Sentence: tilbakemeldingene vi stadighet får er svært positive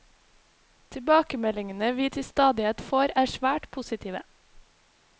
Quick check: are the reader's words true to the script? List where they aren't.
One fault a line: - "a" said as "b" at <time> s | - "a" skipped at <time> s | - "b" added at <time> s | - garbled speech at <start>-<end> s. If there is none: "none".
- "til" added at 2.1 s